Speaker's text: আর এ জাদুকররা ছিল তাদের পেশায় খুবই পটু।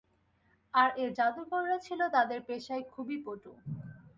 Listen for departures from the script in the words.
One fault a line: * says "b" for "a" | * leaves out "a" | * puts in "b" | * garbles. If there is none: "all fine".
all fine